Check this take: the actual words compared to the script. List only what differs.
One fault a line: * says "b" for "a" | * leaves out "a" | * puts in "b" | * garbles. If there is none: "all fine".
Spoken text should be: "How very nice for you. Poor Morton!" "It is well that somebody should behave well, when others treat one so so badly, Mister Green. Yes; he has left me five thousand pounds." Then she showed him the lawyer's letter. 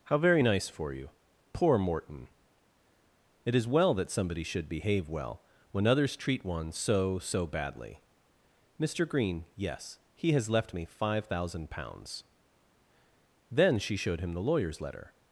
all fine